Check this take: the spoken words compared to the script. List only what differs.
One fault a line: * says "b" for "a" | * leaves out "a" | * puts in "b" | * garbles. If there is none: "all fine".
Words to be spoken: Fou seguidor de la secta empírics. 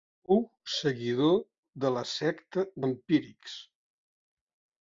all fine